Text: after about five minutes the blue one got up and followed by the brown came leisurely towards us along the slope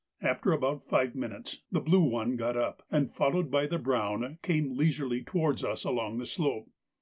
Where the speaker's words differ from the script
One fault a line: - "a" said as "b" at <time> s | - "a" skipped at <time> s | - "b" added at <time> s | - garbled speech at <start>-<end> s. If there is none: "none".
none